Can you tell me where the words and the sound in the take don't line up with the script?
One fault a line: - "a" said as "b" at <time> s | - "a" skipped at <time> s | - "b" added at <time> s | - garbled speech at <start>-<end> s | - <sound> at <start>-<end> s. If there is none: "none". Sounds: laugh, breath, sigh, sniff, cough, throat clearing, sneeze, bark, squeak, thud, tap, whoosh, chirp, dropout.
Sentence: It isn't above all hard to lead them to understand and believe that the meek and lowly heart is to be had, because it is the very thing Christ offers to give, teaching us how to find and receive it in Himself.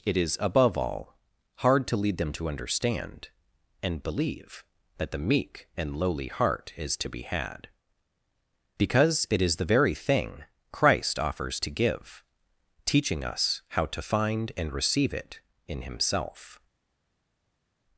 - "isn't" said as "is" at 0.2 s